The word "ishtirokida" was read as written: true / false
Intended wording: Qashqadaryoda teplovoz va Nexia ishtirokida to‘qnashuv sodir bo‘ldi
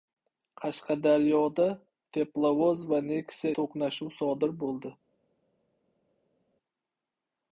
false